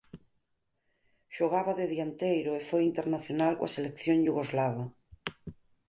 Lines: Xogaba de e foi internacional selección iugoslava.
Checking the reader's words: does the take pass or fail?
fail